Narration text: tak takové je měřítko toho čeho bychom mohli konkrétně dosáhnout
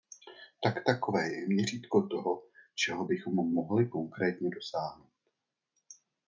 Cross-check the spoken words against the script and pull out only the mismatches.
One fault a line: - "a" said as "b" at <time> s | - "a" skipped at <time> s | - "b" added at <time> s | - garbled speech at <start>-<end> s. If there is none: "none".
none